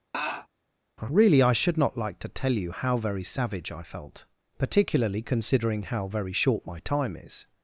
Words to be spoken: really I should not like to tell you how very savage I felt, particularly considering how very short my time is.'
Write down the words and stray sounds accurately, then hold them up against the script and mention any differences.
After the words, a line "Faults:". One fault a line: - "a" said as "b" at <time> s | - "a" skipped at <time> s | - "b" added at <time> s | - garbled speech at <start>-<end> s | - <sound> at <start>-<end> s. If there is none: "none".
really I should not like to tell you how very savage I felt, particularly considering how very short my time is.'
Faults:
- laugh at 0.1-0.5 s